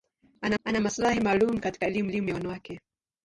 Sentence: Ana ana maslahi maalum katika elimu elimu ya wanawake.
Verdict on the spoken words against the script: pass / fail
pass